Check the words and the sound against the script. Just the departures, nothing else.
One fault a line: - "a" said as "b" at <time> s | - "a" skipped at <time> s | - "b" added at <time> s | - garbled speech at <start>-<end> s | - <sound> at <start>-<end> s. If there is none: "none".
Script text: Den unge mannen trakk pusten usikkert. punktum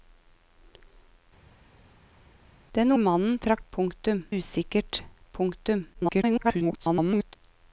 - "unge" skipped at 2.9 s
- "pusten" said as "punktum" at 3.7 s
- garbled speech at 5.9-7.4 s